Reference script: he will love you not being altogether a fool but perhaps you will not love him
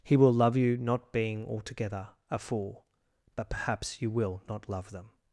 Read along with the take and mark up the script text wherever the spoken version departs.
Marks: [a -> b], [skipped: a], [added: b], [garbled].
he will love you not being altogether a fool but perhaps you will not love [him -> them]